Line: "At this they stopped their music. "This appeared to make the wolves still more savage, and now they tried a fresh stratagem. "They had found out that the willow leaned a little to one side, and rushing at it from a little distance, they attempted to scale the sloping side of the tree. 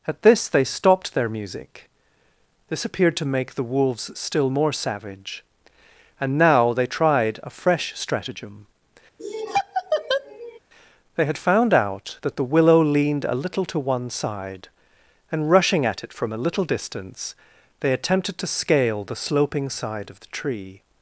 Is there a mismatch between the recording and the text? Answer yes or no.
no